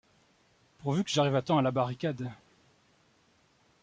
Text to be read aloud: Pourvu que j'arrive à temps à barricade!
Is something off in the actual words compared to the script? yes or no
yes